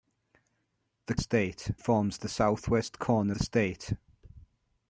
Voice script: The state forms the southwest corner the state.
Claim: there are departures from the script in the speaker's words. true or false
false